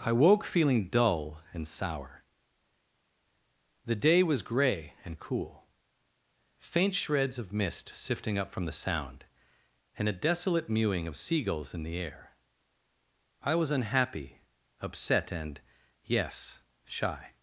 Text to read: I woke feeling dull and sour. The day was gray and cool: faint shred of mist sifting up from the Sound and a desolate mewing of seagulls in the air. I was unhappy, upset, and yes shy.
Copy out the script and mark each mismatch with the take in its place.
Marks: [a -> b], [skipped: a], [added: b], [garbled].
I woke feeling dull and sour. The day was gray and cool: faint [shred -> shreds] of mist sifting up from the Sound and a desolate mewing of seagulls in the air. I was unhappy, upset, and yes shy.